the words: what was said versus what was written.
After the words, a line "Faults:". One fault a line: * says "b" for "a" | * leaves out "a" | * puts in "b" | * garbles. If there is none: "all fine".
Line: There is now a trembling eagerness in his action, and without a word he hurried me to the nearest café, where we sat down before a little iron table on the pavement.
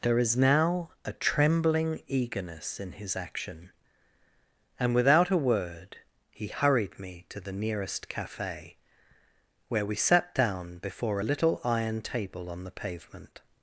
There is now a trembling eagerness in his action, and without a word he hurried me to the nearest café, where we sat down before a little iron table on the pavement.
Faults:
all fine